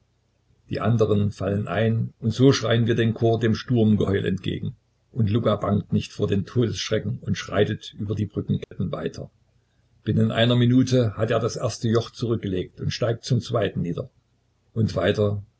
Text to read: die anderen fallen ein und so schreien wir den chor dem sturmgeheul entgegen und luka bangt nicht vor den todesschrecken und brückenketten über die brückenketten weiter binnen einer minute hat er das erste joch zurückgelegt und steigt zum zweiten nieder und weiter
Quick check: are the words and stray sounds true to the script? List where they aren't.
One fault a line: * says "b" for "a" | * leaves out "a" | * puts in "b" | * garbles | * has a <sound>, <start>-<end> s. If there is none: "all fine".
* says "schreitet" for "brückenketten"
* has a dropout, 8.6-8.7 s